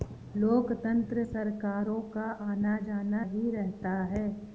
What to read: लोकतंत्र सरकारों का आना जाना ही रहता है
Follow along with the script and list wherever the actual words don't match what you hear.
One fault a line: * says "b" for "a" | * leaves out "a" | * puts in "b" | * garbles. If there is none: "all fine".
all fine